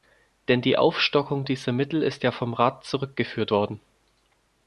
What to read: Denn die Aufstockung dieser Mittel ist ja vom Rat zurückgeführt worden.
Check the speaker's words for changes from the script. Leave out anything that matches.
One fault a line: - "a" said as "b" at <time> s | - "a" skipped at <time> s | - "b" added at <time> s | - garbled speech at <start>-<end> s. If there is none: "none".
none